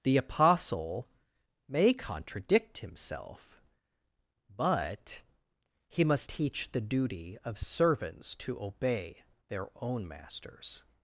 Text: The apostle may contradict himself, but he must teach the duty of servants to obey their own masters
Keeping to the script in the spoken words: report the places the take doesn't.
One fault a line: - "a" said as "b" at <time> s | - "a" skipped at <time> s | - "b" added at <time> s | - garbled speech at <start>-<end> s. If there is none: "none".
none